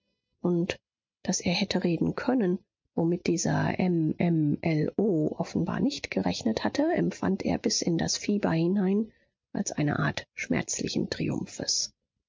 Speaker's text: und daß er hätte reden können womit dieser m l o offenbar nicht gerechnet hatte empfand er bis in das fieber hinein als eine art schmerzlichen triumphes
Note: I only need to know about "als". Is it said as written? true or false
true